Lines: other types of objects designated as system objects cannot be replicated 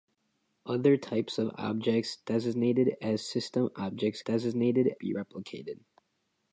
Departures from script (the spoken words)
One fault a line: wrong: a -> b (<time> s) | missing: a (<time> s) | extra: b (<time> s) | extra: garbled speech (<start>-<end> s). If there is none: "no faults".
wrong: cannot -> designated (4.2 s)